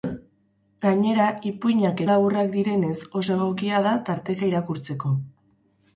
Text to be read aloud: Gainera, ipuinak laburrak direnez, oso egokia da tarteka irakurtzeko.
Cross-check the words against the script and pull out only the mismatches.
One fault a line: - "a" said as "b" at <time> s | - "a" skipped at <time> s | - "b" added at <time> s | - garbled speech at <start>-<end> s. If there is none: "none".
none